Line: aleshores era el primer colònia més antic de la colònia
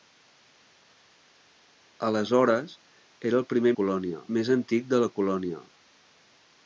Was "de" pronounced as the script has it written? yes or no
yes